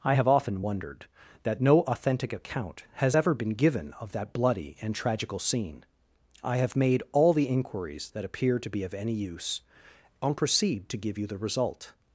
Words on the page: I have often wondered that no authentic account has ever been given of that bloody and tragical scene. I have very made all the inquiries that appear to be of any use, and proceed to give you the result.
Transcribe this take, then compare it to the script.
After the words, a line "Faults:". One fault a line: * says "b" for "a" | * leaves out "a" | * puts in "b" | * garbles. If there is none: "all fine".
I have often wondered that no authentic account has ever been given of that bloody and tragical scene. I have made all the inquiries that appear to be of any use, and proceed to give you the result.
Faults:
* leaves out "very"